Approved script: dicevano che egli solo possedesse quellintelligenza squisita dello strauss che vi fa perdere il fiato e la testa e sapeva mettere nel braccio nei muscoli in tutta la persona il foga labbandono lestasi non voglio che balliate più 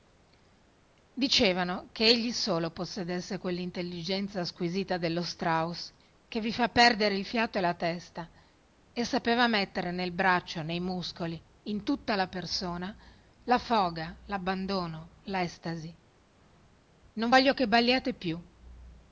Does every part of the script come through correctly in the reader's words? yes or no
no